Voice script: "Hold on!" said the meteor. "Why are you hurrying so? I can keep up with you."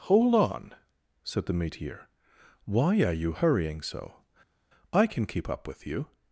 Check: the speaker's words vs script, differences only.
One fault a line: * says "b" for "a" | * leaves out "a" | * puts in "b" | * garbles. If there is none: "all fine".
all fine